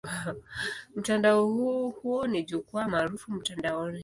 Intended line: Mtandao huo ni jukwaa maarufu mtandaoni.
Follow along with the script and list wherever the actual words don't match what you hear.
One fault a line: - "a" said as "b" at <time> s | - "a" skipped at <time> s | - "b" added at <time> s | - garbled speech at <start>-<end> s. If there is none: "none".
none